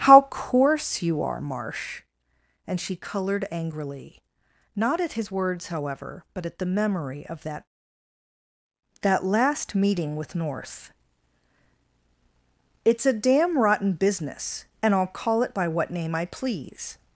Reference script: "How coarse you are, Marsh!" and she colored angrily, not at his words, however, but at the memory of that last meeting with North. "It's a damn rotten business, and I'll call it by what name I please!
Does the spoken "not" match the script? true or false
true